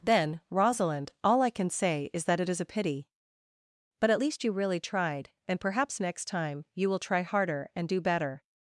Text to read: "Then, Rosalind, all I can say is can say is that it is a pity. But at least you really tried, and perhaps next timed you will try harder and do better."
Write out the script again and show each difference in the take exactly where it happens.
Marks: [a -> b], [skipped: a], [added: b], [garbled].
"Then, Rosalind, all I can say is [skipped: can say is] that it is a pity. But at least you really tried, and perhaps next [timed -> time] you will try harder and do better."